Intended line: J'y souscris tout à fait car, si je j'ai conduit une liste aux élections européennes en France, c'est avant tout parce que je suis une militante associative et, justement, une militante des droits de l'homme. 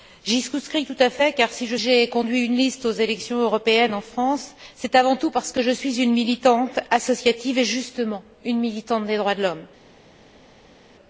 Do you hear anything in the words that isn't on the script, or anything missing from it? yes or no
no